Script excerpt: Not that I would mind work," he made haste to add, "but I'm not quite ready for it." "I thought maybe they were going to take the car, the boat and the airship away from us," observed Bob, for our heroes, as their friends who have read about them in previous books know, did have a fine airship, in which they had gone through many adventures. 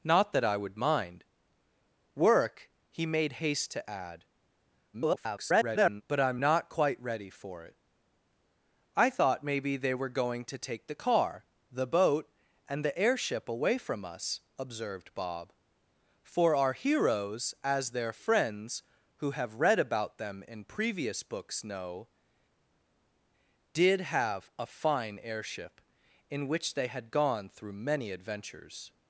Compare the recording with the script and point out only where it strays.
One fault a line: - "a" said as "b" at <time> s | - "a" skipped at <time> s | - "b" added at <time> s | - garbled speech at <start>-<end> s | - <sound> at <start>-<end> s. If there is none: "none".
- garbled speech at 4.9-6.0 s